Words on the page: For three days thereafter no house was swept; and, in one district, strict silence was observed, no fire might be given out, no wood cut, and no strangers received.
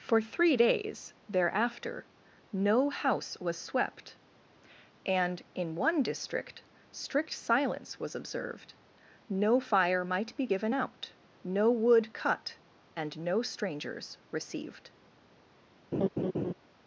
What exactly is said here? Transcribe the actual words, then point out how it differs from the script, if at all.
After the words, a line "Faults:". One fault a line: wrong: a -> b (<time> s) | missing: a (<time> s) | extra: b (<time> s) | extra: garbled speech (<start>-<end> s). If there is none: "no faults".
For three days thereafter no house was swept; and, in one district, strict silence was observed, no fire might be given out, no wood cut, and no strangers received.
Faults:
no faults